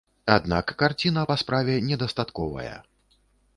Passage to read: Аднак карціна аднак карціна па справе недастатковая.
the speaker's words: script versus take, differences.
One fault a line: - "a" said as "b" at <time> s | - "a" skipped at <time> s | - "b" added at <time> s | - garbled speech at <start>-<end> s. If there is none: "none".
- "аднак карціна" skipped at 1.2 s